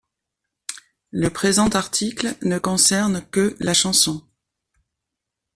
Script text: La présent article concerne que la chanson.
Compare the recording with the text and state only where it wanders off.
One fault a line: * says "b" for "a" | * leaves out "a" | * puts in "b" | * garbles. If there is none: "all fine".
* says "Le" for "La"
* puts in "ne"